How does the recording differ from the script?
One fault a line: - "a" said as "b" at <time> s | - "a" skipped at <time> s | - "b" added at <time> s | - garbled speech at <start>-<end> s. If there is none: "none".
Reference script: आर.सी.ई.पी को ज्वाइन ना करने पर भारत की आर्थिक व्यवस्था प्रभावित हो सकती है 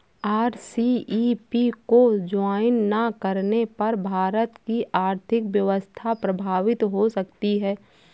none